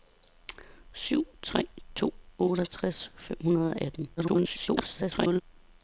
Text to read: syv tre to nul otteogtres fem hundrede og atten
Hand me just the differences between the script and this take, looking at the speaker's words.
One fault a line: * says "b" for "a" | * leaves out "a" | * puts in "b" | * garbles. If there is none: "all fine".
* leaves out "nul"
* garbles